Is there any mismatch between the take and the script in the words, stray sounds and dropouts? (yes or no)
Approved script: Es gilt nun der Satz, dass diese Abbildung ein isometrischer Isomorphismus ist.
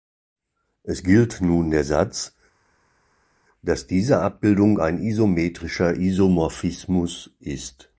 no